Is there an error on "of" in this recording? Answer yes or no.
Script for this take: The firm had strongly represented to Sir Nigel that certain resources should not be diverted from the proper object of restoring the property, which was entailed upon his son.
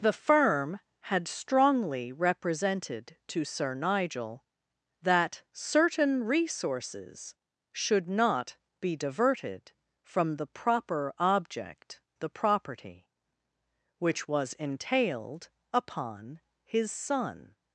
yes